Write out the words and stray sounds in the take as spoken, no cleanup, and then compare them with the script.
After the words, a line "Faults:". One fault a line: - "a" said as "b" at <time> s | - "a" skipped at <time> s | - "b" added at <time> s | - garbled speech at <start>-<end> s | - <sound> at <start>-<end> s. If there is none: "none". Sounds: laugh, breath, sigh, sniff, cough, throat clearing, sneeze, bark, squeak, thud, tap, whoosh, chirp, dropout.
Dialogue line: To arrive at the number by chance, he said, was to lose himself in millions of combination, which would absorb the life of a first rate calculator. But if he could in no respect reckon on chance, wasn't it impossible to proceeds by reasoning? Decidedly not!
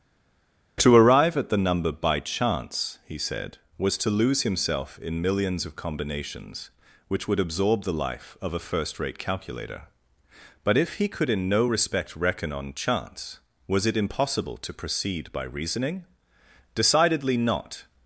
To arrive at the number by chance, he said, was to lose himself in millions of combinations, which would absorb the life of a first rate calculator. But if he could in no respect reckon on chance, was it impossible to proceed by reasoning? Decidedly not!
Faults:
- "combination" said as "combinations" at 5.7 s
- "wasn't" said as "was" at 13.7 s
- "proceeds" said as "proceed" at 14.7 s